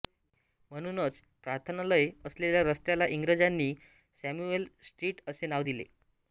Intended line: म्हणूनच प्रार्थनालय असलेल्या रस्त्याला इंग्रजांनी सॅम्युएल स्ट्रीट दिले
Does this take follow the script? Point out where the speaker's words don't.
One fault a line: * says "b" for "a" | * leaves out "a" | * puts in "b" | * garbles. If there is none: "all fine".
* puts in "असे नाव"